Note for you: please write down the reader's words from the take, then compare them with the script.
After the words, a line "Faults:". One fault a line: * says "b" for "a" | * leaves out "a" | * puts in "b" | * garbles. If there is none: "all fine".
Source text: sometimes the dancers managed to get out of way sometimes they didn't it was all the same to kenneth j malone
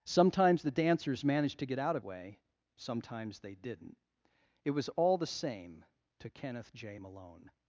sometimes the dancers managed to get out of way sometimes they didn't it was all the same to kenneth j malone
Faults:
all fine